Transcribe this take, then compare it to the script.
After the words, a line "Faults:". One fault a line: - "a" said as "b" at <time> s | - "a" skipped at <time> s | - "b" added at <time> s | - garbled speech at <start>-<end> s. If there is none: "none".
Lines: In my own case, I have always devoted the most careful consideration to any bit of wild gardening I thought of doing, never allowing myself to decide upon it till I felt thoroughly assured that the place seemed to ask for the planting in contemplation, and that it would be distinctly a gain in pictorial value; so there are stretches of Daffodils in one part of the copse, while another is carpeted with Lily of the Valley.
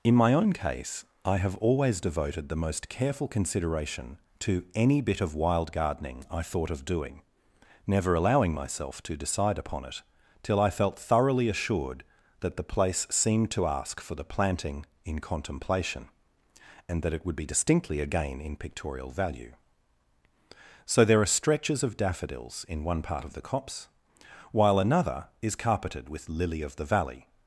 In my own case, I have always devoted the most careful consideration to any bit of wild gardening I thought of doing, never allowing myself to decide upon it till I felt thoroughly assured that the place seemed to ask for the planting in contemplation, and that it would be distinctly a gain in pictorial value; so there are stretches of Daffodils in one part of the copse, while another is carpeted with Lily of the Valley.
Faults:
none